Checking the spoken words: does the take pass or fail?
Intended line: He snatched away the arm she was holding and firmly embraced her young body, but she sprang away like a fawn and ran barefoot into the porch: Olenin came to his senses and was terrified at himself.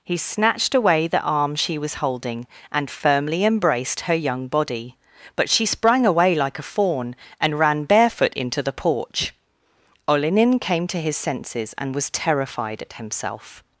pass